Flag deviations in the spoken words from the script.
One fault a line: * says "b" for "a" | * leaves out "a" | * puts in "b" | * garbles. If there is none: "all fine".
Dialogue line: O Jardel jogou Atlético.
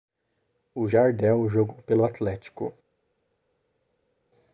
* puts in "pelo"